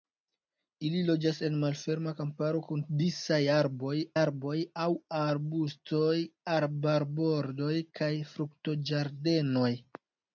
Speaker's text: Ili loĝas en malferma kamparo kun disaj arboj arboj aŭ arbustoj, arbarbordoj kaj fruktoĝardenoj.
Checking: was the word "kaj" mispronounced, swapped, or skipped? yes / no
no